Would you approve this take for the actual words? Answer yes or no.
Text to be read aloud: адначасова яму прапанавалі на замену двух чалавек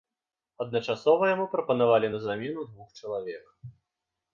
yes